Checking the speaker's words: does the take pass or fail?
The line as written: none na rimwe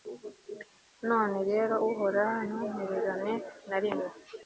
fail